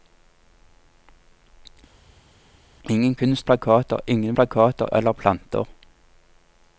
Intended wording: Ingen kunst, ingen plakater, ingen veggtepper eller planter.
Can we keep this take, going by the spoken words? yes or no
no